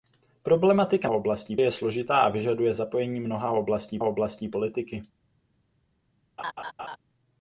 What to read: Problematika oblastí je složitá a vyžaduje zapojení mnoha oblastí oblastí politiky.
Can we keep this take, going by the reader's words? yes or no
yes